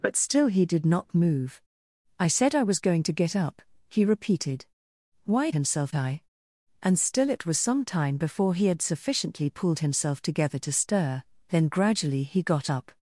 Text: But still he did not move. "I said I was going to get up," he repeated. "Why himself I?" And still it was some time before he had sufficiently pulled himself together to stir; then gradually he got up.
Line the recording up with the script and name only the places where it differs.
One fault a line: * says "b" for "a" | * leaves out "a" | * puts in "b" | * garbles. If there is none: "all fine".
all fine